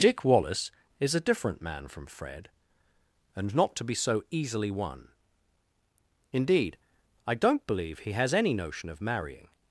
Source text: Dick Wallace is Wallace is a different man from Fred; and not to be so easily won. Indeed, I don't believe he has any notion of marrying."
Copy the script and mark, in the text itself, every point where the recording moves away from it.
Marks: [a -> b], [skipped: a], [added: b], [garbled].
Dick Wallace is [skipped: Wallace is] a different man from Fred; and not to be so easily won. Indeed, I don't believe he has any notion of marrying."